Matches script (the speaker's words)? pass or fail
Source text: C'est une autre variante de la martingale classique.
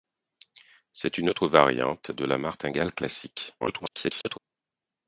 fail